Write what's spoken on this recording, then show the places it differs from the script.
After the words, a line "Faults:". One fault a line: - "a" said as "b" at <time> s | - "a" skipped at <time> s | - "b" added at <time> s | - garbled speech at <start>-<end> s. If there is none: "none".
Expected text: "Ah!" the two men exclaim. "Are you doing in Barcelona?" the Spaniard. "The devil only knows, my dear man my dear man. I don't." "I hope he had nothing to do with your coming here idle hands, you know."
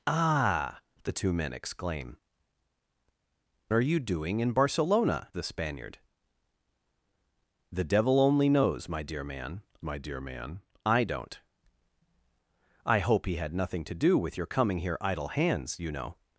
"Ah!" the two men exclaim. "Are you doing in Barcelona?" the Spaniard. "The devil only knows, my dear man my dear man. I don't." "I hope he had nothing to do with your coming here idle hands, you know."
Faults:
none